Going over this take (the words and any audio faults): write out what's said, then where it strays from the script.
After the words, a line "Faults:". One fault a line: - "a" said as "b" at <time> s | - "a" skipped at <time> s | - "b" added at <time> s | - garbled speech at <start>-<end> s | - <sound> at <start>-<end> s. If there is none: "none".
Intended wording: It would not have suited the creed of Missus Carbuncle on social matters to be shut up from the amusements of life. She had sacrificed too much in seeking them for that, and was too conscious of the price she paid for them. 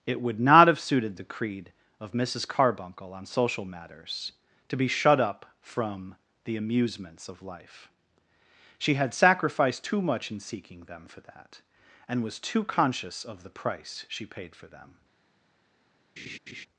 It would not have suited the creed of Missus Carbuncle on social matters to be shut up from the amusements of life. She had sacrificed too much in seeking them for that, and was too conscious of the price she paid for them.
Faults:
- laugh at 16.2-16.7 s